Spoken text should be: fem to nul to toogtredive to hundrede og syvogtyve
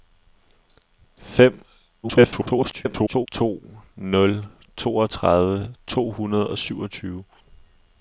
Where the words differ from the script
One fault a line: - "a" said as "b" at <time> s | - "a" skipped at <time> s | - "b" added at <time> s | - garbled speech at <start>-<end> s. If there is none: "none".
- garbled speech at 2.0-3.3 s
- "to" skipped at 4.4 s